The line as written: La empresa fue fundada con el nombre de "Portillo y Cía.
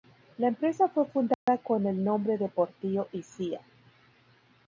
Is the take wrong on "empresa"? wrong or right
right